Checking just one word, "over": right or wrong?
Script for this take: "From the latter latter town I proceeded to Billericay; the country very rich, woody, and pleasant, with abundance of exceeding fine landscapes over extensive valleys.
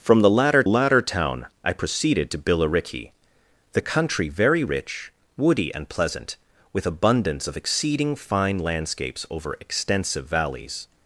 right